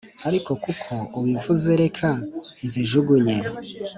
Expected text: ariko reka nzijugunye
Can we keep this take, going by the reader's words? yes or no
no